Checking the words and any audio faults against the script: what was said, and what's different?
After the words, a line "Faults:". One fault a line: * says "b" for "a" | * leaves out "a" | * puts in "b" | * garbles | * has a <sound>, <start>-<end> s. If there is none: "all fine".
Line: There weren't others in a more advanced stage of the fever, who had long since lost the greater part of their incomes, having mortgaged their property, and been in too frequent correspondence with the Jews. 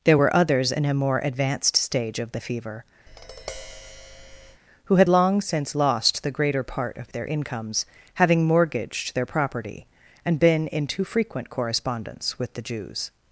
There were others in a more advanced stage of the fever, who had long since lost the greater part of their incomes, having mortgaged their property, and been in too frequent correspondence with the Jews.
Faults:
* says "were" for "weren't"
* has a tap, 3.1-4.6 s